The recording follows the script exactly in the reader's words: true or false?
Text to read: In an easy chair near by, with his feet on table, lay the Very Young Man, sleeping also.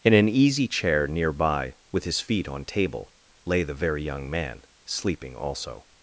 true